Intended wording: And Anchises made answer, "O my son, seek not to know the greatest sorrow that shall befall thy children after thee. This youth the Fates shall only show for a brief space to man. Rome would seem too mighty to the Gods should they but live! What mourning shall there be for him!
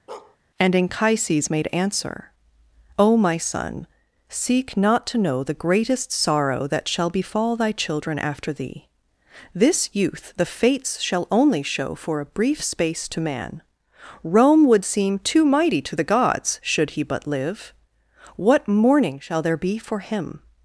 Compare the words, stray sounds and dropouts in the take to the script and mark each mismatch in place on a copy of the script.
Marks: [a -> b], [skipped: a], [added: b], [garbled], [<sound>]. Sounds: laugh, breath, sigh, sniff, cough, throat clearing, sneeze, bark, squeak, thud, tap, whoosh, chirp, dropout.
[bark] And Anchises made answer, "O my son, seek not to know the greatest sorrow that shall befall thy children after thee. This youth the Fates shall only show for a brief space to man. Rome would seem too mighty to the Gods should [they -> he] but live! What mourning shall there be for him!